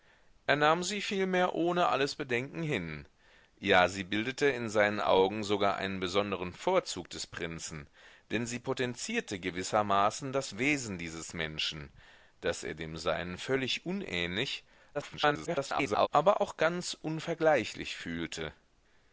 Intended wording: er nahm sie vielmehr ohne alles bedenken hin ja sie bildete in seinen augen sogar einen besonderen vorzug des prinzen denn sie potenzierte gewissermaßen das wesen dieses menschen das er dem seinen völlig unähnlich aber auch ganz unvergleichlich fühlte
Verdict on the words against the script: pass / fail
fail